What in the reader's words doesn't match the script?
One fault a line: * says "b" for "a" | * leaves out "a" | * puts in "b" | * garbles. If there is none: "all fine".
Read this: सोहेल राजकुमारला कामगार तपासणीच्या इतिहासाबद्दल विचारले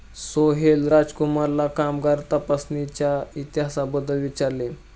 all fine